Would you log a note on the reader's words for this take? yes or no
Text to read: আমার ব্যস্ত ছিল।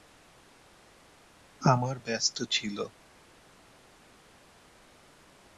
no